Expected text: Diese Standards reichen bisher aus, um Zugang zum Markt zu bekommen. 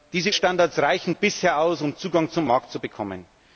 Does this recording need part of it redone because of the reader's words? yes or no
no